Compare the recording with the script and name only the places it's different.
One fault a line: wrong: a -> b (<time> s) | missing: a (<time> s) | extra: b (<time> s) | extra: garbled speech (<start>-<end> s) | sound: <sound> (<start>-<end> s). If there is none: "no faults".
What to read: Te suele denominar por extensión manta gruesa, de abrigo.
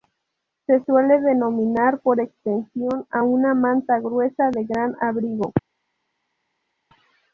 wrong: Te -> Se (0.7 s)
extra: a una (3.1 s)
extra: gran (4.6 s)